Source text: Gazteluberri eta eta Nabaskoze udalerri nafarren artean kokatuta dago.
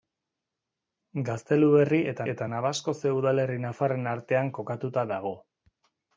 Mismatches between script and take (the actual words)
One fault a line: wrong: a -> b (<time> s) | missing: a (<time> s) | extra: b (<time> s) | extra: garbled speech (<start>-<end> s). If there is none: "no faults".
no faults